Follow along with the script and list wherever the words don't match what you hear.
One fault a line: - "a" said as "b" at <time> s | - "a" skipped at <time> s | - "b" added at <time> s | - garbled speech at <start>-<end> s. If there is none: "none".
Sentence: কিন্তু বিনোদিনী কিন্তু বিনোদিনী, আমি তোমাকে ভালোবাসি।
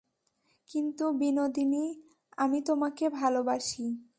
- "কিন্তু বিনোদিনী" skipped at 1.9 s